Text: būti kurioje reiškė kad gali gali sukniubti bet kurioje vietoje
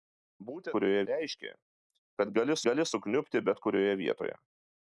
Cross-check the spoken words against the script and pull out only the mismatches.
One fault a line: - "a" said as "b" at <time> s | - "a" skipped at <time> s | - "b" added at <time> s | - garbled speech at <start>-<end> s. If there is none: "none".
none